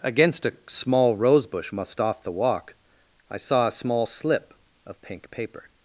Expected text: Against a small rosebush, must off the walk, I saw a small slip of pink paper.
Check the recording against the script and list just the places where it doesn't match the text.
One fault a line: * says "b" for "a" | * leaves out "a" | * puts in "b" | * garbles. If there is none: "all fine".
all fine